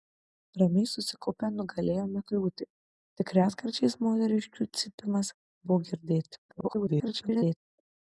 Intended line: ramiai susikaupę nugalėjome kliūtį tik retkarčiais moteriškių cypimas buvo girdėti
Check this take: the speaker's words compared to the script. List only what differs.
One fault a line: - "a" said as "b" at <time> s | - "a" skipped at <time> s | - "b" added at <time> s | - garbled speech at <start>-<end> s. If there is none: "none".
- garbled speech at 6.5-7.6 s